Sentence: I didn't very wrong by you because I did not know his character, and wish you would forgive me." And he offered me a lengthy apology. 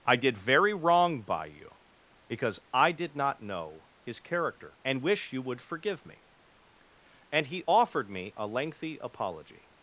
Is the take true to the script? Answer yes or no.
no